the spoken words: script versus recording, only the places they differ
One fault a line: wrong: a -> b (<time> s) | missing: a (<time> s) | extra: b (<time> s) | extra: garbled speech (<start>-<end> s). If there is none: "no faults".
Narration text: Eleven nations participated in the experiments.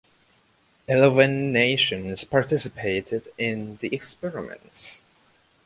no faults